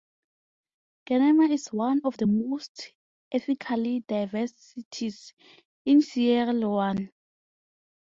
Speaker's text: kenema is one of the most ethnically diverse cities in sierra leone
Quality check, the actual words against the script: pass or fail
pass